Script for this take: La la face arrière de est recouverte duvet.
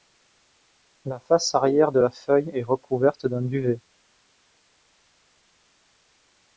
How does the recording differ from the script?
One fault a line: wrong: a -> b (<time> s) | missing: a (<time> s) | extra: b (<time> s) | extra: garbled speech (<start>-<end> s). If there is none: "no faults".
missing: la (1.2 s)
extra: la feuille (2.0 s)
extra: d'un (3.2 s)